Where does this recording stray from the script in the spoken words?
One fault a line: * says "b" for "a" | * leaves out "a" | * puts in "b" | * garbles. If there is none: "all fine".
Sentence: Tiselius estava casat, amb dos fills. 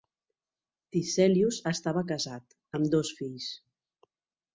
all fine